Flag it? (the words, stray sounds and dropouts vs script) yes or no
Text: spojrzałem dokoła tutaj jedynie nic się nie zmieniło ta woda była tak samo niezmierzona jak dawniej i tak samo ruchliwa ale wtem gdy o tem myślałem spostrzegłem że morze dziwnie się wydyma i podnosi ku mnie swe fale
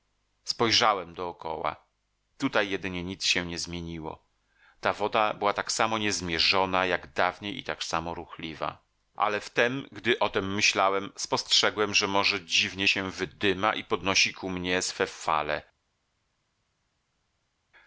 no